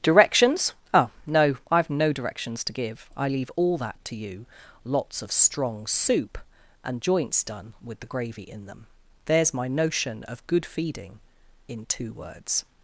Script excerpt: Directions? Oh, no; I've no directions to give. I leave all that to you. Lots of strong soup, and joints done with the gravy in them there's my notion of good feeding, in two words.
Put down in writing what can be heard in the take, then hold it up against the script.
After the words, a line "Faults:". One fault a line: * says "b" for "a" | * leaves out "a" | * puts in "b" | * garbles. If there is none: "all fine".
Directions? Oh, no; I've no directions to give. I leave all that to you. Lots of strong soup, and joints done with the gravy in them there's my notion of good feeding, in two words.
Faults:
all fine